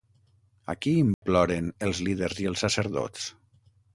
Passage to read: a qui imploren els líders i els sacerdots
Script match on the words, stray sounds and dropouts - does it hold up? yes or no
no